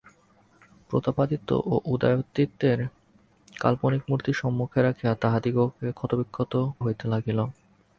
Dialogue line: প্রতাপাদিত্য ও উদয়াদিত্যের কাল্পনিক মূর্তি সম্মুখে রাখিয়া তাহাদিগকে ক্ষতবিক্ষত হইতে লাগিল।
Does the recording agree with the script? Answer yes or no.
yes